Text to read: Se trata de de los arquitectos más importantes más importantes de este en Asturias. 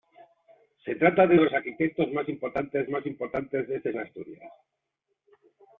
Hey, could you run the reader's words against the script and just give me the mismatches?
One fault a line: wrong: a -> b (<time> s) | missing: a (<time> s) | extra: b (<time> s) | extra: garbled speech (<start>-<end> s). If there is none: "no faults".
no faults